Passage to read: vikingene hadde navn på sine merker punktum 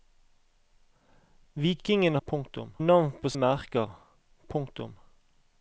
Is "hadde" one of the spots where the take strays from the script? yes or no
yes